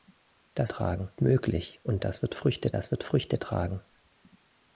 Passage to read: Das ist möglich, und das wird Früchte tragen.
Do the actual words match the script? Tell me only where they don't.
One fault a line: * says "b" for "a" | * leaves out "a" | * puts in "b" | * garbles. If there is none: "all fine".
* says "tragen" for "ist"
* puts in "das wird Früchte"